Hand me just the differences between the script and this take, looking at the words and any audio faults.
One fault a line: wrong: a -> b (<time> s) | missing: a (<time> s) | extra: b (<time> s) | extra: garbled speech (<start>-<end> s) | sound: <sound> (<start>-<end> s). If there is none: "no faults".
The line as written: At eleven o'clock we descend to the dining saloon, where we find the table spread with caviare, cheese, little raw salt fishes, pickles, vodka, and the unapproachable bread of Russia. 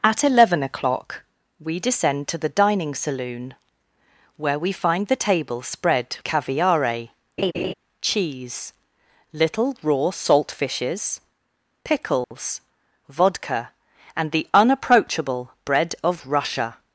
missing: with (6.2 s)
sound: laugh (7.4-7.7 s)
sound: dropout (12.2-12.3 s)